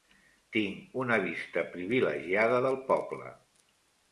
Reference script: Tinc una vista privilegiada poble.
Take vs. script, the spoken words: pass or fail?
fail